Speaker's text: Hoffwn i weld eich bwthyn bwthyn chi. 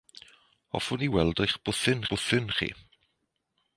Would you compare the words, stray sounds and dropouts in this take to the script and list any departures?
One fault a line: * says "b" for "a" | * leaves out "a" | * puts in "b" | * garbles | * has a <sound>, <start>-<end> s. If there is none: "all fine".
all fine